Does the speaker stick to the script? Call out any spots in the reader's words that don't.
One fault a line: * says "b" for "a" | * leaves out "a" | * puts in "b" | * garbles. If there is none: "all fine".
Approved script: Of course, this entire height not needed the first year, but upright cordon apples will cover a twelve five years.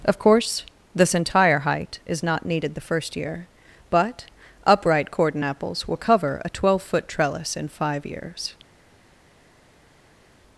* puts in "is"
* puts in "foot trellis in"